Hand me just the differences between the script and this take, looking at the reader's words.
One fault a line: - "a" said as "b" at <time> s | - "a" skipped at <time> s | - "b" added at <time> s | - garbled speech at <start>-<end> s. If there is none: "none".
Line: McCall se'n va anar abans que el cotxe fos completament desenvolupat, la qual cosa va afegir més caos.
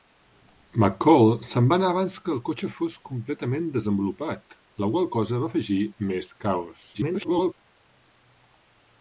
- garbled speech at 6.9-7.5 s